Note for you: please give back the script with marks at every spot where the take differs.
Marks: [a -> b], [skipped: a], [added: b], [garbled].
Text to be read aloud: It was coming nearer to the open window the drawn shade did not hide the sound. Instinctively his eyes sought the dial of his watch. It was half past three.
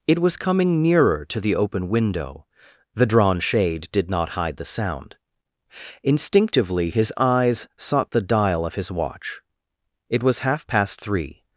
It was coming nearer to the open window the drawn shade did not hide the sound. Instinctively his eyes sought the dial of his watch. It was half past three.